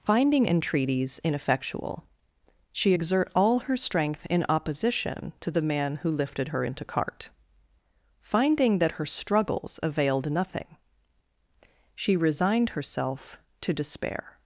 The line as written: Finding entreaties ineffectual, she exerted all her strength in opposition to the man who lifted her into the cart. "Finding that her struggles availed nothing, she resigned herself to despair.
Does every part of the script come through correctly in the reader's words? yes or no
no